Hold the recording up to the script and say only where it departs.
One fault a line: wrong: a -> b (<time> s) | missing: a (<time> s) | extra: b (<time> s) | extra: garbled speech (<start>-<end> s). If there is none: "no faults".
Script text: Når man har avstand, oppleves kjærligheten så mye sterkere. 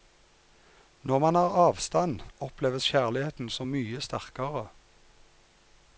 no faults